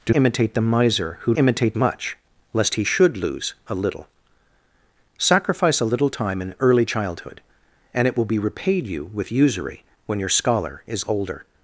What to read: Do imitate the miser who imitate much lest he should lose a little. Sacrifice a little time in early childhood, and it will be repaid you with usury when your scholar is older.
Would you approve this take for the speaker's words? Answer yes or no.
yes